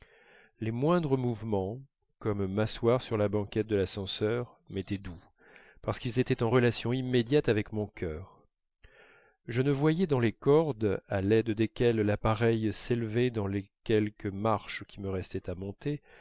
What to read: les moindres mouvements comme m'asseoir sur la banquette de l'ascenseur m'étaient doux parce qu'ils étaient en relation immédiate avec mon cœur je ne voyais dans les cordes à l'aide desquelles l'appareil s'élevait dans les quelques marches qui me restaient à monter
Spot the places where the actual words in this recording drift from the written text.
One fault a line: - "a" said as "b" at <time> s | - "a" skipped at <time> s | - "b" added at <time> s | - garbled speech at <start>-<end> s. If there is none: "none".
none